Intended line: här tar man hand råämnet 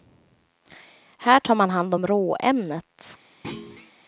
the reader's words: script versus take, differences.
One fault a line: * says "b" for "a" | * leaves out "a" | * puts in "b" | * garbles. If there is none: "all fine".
* puts in "om"